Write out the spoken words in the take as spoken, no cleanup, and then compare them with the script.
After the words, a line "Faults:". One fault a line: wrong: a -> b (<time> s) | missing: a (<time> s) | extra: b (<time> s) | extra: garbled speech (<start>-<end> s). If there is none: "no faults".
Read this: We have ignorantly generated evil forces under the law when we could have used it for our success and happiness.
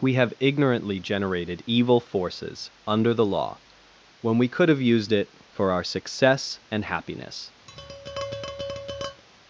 We have ignorantly generated evil forces under the law when we could have used it for our success and happiness.
Faults:
no faults